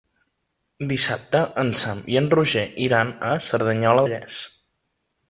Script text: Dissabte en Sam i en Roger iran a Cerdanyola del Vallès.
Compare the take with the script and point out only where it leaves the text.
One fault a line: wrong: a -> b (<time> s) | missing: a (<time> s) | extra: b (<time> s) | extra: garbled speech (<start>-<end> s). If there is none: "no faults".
missing: del (4.1 s)